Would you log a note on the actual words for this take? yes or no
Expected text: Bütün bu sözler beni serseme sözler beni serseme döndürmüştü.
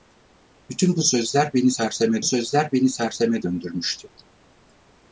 no